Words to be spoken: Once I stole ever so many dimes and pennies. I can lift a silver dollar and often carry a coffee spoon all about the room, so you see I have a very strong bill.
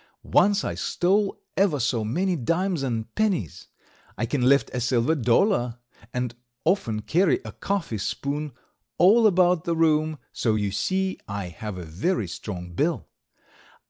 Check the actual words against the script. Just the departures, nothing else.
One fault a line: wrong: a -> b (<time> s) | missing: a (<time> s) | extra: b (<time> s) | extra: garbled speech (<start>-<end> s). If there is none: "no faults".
no faults